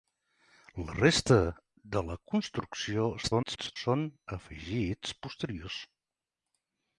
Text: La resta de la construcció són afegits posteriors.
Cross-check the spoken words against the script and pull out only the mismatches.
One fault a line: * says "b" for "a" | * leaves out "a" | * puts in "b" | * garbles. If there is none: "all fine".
* garbles